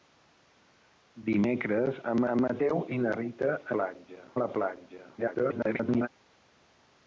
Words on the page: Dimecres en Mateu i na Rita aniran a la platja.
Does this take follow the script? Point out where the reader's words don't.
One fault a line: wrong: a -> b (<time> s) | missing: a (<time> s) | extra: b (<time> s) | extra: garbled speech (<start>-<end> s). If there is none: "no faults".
extra: en (2.3 s)
wrong: aniran -> platja (3.8 s)
extra: garbled speech (5.2-6.1 s)